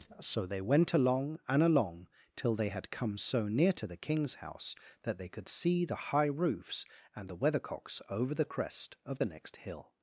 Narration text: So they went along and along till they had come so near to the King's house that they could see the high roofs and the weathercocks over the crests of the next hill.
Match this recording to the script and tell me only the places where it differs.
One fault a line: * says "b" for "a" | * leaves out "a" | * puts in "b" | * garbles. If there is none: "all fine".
* says "crest" for "crests"